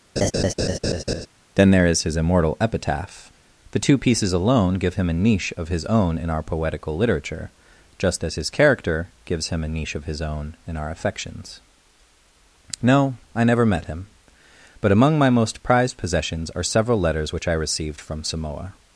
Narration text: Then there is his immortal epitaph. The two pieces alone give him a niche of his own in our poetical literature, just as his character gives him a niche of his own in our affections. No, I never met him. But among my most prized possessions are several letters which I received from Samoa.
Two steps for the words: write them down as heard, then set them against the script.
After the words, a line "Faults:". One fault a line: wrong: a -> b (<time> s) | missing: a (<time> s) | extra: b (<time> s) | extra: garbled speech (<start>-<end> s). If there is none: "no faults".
Then there is his immortal epitaph. The two pieces alone give him a niche of his own in our poetical literature, just as his character gives him a niche of his own in our affections. No, I never met him. But among my most prized possessions are several letters which I received from Samoa.
Faults:
no faults